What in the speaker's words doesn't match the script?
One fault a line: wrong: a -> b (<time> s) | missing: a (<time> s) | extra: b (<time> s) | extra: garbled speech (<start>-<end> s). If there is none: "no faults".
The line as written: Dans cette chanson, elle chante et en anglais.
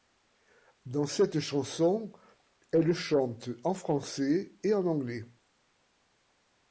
extra: en français (3.6 s)